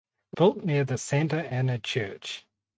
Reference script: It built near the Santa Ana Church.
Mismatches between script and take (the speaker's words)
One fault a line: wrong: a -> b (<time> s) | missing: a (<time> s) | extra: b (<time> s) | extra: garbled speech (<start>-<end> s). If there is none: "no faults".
no faults